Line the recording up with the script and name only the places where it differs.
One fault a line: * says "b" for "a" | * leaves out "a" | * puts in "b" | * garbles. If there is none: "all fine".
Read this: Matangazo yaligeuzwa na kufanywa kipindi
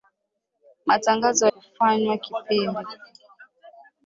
* leaves out "yaligeuzwa na"